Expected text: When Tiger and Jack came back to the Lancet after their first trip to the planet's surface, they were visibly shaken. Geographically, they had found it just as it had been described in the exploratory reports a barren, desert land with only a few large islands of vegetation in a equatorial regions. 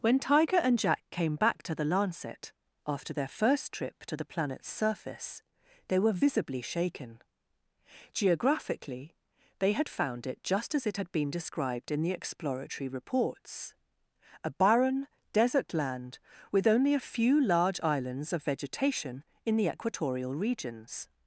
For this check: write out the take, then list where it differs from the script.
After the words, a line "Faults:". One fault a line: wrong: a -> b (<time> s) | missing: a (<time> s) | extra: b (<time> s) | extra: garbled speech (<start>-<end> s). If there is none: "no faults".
When Tiger and Jack came back to the Lancet after their first trip to the planet's surface, they were visibly shaken. Geographically, they had found it just as it had been described in the exploratory reports a barren, desert land with only a few large islands of vegetation in the equatorial regions.
Faults:
wrong: a -> the (19.6 s)